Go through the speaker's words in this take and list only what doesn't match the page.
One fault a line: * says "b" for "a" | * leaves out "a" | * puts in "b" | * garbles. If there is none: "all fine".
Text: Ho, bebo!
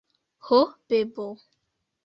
all fine